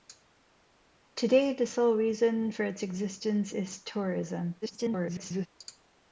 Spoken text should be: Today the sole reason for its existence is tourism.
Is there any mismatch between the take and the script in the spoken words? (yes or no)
yes